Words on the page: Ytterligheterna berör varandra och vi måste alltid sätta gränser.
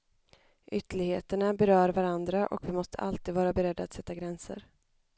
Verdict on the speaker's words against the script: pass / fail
fail